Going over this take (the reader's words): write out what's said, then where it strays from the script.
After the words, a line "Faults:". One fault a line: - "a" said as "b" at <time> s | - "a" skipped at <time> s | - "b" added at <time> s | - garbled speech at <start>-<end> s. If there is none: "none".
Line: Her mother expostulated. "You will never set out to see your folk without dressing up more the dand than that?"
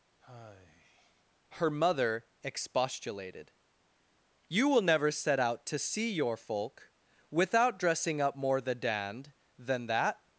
Her mother expostulated. "You will never set out to see your folk without dressing up more the dand than that?"
Faults:
none